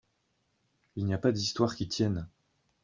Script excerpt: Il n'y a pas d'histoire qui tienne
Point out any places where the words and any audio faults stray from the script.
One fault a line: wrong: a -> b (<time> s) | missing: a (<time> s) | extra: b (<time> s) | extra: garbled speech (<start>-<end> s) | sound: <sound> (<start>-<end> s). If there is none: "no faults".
no faults